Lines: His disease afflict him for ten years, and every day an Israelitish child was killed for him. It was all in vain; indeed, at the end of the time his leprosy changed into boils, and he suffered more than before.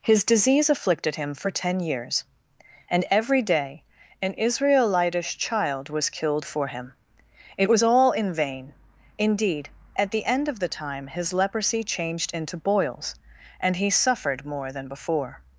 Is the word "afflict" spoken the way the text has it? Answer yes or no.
no